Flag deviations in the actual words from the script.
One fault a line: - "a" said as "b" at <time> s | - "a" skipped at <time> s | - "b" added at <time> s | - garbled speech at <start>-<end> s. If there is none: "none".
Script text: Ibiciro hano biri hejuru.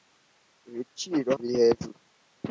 - "hano" skipped at 1.3 s